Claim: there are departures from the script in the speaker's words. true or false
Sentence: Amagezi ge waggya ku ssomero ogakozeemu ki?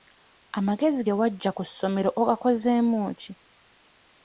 false